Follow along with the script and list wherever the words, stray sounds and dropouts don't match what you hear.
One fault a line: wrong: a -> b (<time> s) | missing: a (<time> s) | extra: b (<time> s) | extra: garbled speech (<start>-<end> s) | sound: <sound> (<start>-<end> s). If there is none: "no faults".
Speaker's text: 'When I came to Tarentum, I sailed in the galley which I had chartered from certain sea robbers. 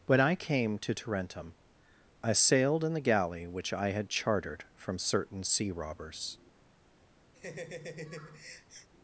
sound: laugh (7.3-8.9 s)